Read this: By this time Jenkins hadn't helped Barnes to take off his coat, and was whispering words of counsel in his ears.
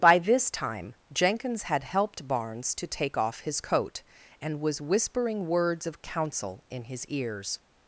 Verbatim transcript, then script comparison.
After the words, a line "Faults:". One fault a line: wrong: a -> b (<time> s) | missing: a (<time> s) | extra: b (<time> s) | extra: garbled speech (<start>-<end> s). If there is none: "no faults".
By this time Jenkins had helped Barnes to take off his coat, and was whispering words of counsel in his ears.
Faults:
wrong: hadn't -> had (1.6 s)